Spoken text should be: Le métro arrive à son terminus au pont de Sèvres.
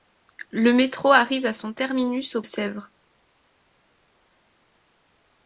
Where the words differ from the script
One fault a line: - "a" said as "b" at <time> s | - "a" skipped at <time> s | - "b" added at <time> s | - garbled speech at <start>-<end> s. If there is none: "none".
- "pont de" skipped at 2.4 s